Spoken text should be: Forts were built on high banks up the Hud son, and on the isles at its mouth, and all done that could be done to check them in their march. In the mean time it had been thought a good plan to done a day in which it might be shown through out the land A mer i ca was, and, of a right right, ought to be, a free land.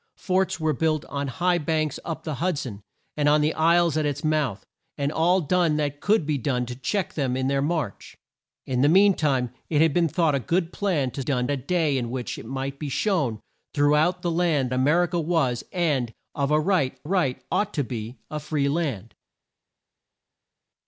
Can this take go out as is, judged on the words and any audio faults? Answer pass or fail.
pass